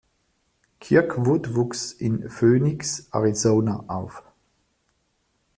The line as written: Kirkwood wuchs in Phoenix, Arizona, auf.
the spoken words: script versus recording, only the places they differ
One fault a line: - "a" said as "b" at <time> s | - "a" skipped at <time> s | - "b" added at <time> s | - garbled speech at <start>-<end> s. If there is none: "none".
none